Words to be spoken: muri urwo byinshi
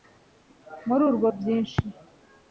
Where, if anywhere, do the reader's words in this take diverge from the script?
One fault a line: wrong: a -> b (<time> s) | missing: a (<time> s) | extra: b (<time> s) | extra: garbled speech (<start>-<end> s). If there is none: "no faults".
no faults